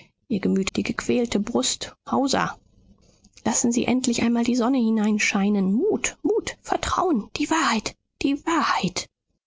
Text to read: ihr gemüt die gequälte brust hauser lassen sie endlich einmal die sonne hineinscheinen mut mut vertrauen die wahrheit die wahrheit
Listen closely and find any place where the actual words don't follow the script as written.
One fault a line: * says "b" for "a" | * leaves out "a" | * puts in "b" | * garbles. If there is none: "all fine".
all fine